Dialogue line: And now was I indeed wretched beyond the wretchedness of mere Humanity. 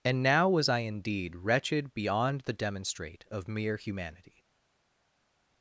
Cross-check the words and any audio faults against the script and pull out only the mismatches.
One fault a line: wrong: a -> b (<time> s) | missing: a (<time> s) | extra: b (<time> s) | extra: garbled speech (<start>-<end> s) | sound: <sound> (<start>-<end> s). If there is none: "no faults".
wrong: wretchedness -> demonstrate (2.5 s)